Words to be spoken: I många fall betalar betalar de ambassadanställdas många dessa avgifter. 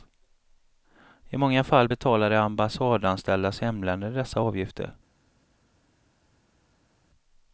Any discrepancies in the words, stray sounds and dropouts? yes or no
yes